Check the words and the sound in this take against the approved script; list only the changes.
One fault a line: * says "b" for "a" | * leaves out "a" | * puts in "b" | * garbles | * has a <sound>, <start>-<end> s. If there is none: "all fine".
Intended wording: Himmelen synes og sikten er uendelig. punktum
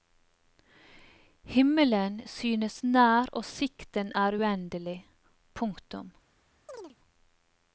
* puts in "nær"
* has a chirp, 6.7-7.0 s